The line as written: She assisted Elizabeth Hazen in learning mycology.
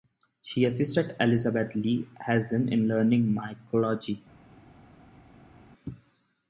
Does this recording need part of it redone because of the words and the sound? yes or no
yes